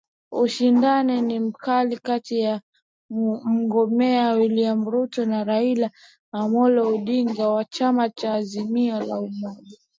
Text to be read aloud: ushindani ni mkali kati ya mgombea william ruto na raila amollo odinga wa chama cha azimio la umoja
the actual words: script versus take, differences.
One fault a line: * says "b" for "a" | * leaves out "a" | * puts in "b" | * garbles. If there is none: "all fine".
all fine